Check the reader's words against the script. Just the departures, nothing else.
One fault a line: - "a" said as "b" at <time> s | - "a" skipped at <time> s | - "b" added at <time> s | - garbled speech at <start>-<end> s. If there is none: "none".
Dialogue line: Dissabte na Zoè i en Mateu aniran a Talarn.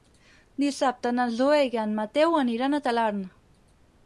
none